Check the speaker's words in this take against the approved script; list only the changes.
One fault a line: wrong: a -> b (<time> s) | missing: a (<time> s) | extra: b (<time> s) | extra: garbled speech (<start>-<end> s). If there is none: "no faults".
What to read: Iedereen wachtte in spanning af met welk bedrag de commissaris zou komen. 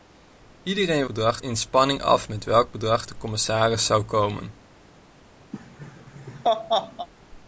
wrong: wachtte -> bedrag (1.0 s)